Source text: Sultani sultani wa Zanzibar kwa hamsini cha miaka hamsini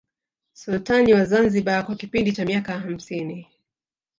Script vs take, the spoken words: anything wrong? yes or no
yes